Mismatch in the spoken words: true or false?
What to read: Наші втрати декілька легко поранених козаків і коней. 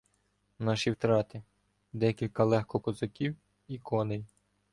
true